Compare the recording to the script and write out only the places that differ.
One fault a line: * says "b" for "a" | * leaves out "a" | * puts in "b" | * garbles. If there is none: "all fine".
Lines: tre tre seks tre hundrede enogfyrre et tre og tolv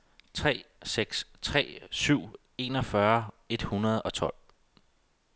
* leaves out "tre"
* says "syv" for "hundrede"
* says "hundrede" for "tre"